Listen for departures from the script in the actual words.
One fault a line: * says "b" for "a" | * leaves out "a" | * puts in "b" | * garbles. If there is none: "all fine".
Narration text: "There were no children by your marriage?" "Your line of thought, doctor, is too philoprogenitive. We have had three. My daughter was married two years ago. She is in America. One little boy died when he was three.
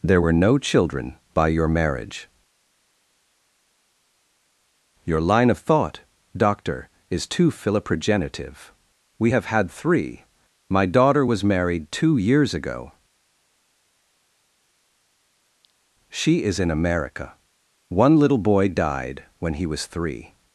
all fine